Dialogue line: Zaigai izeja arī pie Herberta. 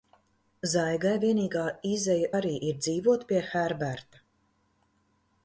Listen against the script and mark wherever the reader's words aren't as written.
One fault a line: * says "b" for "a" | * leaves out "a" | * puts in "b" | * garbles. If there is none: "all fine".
* puts in "vienīgā"
* puts in "ir dzīvot"